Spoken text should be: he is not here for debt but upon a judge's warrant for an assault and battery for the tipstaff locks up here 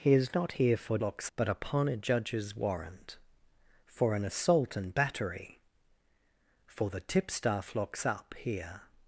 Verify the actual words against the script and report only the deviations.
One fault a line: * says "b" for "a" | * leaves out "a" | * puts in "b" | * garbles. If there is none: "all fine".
* says "locks" for "debt"